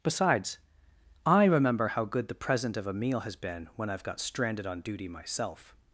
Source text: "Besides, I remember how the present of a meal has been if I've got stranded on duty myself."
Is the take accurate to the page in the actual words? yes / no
no